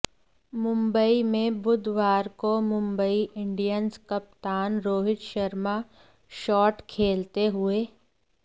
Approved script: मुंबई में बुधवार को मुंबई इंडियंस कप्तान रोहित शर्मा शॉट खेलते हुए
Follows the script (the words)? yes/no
yes